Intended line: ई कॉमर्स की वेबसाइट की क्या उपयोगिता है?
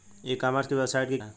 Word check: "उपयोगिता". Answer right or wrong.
wrong